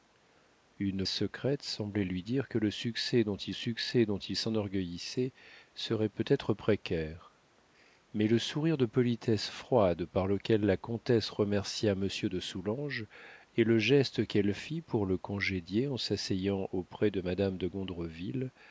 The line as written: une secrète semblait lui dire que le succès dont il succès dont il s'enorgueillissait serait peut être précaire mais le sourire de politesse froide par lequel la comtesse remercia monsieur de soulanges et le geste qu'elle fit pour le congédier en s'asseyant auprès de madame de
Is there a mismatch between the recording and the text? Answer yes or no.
no